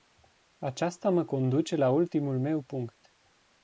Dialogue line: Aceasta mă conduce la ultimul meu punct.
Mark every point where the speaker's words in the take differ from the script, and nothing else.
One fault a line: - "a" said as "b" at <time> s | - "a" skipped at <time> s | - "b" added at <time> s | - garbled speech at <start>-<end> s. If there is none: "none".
none